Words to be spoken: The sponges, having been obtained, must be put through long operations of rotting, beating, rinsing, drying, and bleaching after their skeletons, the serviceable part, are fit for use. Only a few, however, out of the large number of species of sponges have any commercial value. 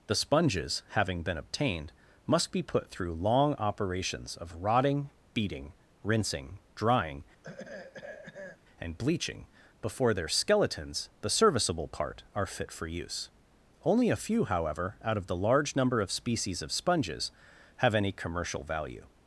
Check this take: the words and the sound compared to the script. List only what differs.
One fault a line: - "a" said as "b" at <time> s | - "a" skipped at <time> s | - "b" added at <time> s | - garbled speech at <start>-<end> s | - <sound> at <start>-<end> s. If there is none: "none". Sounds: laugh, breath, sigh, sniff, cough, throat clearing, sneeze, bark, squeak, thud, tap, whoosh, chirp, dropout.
- throat clearing at 7.4-8.6 s
- "after" said as "before" at 9.8 s